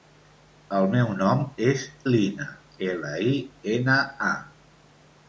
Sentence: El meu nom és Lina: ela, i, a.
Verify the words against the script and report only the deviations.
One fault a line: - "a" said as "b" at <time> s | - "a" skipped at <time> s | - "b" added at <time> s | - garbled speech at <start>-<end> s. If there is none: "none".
- "ena" added at 3.7 s